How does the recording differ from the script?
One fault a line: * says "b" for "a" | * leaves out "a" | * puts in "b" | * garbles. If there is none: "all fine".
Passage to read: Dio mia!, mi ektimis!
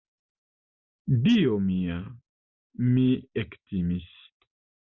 all fine